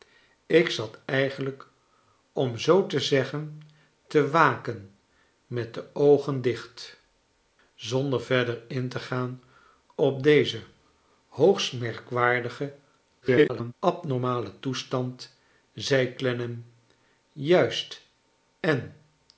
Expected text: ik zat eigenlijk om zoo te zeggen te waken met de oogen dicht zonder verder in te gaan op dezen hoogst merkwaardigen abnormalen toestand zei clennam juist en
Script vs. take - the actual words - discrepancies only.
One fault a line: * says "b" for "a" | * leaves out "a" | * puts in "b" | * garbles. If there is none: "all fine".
* garbles